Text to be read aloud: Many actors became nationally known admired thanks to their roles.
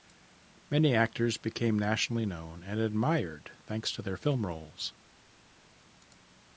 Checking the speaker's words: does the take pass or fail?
fail